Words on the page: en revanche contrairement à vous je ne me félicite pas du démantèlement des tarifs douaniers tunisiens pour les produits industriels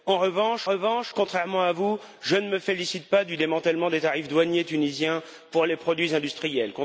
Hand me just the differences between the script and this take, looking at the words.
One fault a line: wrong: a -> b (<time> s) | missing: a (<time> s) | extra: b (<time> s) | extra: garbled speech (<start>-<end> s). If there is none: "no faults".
extra: revanche (0.6 s)